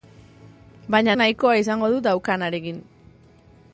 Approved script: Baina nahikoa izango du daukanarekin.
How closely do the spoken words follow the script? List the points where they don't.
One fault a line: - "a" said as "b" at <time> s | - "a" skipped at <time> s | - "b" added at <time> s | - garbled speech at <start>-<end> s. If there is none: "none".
none